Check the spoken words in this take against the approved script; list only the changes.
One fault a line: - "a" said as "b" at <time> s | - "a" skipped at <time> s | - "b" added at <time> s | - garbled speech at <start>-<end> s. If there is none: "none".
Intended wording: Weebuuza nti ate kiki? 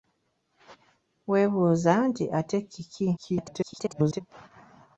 - garbled speech at 3.2-4.2 s